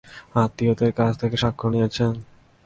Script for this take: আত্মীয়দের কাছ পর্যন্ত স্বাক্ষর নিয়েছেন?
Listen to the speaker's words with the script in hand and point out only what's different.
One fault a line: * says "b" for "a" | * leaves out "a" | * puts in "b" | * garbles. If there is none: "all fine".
* says "থেকে" for "পর্যন্ত"